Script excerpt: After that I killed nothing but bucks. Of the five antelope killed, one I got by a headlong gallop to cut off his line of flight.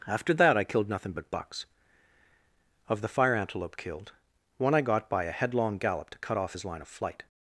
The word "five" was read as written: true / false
false